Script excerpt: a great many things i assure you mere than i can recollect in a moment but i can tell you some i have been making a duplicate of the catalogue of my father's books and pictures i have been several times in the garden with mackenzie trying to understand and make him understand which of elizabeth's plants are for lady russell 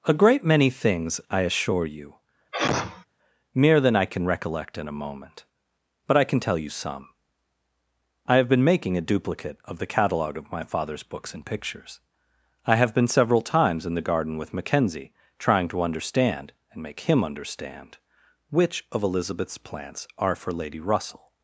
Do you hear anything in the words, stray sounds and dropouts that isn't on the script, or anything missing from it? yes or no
yes